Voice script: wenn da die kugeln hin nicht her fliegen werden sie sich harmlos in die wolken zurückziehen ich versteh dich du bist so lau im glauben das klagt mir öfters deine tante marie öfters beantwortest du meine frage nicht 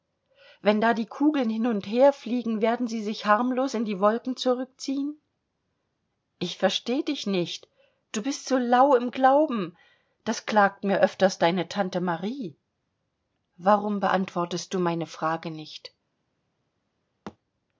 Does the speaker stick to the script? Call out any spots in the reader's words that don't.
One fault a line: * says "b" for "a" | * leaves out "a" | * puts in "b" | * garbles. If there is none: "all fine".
* says "und" for "nicht"
* puts in "nicht"
* says "warum" for "öfters"